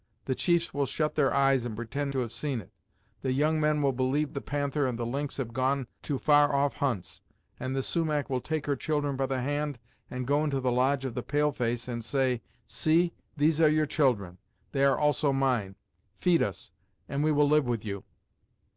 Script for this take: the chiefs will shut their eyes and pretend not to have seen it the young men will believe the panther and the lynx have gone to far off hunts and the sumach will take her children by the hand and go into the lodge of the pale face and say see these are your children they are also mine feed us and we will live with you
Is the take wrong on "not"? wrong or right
wrong